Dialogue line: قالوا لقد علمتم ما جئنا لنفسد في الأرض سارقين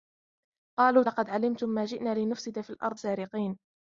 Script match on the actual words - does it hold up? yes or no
yes